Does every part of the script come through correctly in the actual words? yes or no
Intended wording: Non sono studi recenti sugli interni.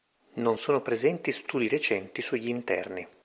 no